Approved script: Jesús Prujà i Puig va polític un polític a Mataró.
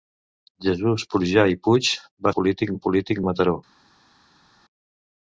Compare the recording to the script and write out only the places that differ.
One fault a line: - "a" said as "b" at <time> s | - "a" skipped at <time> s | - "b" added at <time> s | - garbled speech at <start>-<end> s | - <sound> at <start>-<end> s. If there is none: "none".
none